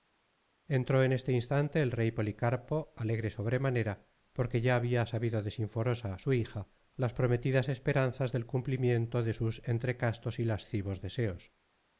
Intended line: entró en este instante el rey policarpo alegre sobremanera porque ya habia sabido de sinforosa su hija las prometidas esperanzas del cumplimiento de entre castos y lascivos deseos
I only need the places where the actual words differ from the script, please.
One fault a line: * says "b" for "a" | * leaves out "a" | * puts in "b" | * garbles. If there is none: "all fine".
* puts in "sus"